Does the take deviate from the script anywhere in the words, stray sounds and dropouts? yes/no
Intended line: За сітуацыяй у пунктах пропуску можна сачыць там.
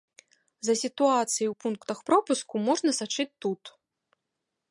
yes